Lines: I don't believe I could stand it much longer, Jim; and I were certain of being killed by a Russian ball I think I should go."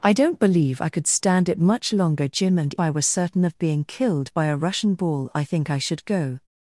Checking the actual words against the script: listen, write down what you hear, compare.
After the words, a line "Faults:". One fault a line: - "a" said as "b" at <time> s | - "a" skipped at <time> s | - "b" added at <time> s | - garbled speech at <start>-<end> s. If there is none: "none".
I don't believe I could stand it much longer, Jim; and I were certain of being killed by a Russian ball I think I should go."
Faults:
none